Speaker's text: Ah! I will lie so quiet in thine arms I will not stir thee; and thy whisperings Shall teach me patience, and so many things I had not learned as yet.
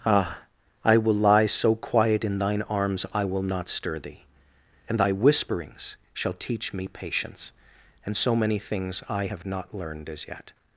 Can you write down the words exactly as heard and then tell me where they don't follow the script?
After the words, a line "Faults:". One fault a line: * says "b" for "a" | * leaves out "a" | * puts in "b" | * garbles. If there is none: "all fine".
Ah! I will lie so quiet in thine arms I will not stir thee; and thy whisperings Shall teach me patience, and so many things I have not learned as yet.
Faults:
* says "have" for "had"